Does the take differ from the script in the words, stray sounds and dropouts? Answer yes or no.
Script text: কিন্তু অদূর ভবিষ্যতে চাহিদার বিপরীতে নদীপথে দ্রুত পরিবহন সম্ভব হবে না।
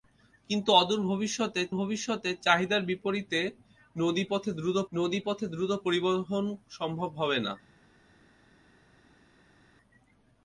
yes